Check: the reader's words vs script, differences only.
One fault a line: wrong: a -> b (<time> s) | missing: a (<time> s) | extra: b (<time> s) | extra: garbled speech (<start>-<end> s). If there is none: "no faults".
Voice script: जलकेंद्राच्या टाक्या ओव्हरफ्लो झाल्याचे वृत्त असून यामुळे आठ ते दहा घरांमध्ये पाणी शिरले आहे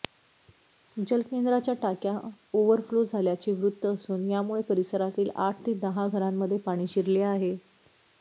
extra: परिसरातील (4.7 s)